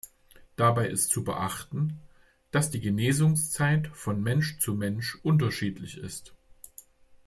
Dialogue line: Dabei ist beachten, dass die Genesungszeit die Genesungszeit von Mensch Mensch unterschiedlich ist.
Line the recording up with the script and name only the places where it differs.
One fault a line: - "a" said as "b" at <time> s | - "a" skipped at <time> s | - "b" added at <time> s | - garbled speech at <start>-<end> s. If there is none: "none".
- "zu" added at 1.1 s
- "die Genesungszeit" skipped at 3.9 s
- "zu" added at 4.6 s